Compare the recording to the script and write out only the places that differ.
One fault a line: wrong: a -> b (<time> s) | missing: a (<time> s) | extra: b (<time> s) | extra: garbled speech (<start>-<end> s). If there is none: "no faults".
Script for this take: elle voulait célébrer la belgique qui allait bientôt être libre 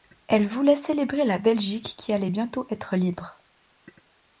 no faults